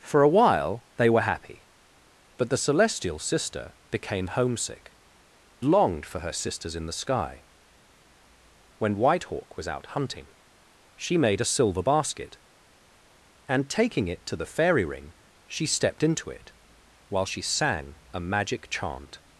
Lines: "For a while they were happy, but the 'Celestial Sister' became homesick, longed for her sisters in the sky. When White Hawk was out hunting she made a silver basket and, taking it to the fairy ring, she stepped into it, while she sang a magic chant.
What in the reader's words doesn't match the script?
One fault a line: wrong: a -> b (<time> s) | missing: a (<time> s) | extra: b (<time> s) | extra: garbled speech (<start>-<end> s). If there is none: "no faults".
no faults